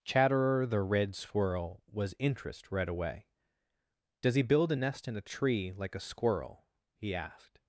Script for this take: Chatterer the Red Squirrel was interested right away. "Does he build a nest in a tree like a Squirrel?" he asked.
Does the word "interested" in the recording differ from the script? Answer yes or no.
yes